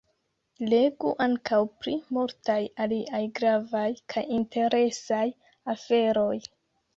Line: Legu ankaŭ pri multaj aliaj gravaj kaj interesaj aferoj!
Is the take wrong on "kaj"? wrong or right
right